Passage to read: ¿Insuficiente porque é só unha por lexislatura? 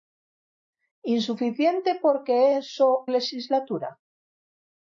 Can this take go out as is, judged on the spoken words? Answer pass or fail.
fail